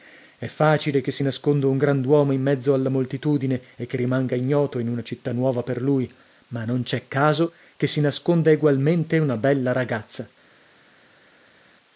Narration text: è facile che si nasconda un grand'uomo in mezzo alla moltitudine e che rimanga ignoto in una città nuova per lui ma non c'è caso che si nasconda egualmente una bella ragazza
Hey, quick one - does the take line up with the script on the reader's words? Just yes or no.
yes